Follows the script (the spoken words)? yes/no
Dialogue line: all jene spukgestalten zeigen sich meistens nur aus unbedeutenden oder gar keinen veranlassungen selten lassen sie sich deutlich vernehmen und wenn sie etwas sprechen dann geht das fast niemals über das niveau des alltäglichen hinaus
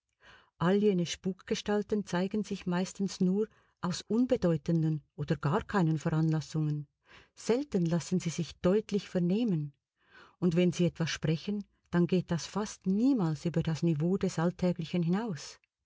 yes